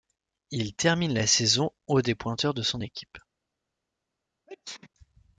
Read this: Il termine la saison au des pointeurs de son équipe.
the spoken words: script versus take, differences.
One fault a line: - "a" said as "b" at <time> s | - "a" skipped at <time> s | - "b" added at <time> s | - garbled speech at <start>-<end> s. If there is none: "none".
none